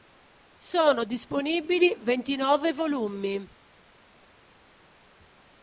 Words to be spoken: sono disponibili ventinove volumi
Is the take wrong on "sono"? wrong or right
right